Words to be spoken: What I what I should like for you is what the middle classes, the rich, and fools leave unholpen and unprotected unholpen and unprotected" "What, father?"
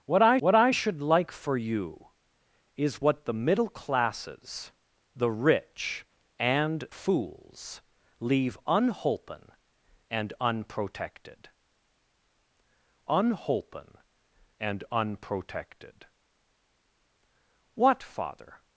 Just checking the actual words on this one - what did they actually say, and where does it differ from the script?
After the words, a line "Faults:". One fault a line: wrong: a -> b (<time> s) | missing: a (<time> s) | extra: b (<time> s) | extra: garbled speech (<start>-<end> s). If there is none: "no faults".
What I what I should like for you is what the middle classes, the rich, and fools leave unholpen and unprotected unholpen and unprotected" "What, father?"
Faults:
no faults